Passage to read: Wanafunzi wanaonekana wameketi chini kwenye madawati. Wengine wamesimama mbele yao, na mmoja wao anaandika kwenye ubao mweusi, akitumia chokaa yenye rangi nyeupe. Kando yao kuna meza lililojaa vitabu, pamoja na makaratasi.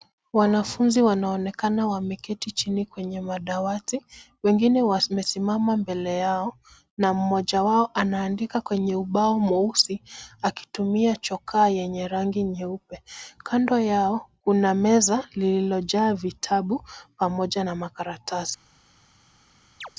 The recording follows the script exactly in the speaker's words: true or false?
true